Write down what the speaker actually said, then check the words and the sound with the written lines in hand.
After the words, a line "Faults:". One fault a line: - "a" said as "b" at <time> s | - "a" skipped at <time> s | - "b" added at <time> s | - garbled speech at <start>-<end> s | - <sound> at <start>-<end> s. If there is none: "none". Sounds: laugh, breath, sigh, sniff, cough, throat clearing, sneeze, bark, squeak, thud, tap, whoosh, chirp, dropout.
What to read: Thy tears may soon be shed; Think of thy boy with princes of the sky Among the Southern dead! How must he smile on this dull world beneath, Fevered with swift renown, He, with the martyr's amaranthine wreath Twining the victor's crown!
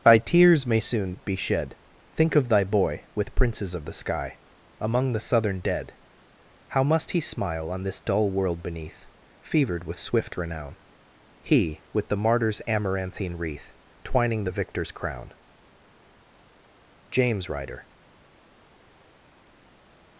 Thy tears may soon be shed; Think of thy boy with princes of the sky Among the Southern dead! How must he smile on this dull world beneath, Fevered with swift renown, He, with the martyr's amaranthine wreath Twining the victor's crown! JAMES RYDER
Faults:
- "JAMES RYDER" added at 17.1 s